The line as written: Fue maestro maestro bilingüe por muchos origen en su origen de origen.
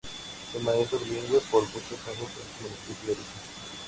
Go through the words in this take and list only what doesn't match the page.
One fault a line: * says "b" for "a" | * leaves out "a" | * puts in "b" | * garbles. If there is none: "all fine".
* leaves out "maestro"
* says "años" for "origen"
* says "municipio" for "origen"